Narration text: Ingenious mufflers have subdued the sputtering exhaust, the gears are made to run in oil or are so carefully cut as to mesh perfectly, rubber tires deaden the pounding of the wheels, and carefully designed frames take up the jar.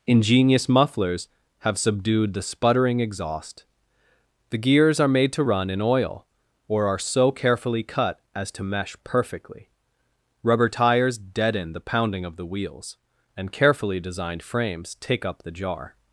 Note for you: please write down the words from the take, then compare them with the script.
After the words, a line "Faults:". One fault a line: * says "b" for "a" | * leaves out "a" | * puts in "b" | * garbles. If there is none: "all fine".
Ingenious mufflers have subdued the sputtering exhaust, the gears are made to run in oil or are so carefully cut as to mesh perfectly, rubber tires deaden the pounding of the wheels, and carefully designed frames take up the jar.
Faults:
all fine